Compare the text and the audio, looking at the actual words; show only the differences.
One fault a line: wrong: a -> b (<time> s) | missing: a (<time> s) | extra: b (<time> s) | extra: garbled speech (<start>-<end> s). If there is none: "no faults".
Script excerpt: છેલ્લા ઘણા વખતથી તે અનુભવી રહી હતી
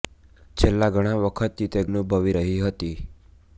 no faults